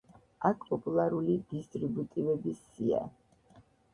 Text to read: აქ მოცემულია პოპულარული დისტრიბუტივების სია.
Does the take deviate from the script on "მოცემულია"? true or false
true